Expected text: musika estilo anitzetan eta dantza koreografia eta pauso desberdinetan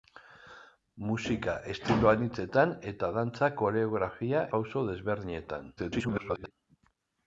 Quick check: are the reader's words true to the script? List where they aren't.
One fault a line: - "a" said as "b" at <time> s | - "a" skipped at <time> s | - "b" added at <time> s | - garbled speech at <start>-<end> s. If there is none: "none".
- "eta" skipped at 4.4 s
- garbled speech at 5.8-6.5 s